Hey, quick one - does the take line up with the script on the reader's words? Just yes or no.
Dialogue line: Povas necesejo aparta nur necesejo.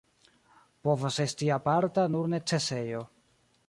no